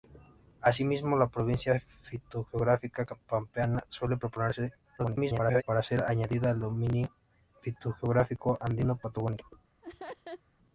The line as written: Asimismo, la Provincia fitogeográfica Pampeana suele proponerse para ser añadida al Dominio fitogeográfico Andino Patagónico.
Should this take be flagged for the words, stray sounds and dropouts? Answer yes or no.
yes